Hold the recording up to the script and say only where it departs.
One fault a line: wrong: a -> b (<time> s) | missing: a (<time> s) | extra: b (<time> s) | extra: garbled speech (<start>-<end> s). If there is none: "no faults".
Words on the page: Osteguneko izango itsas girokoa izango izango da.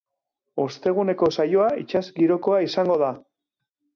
wrong: izango -> saioa (1.3 s)
missing: izango (3.0 s)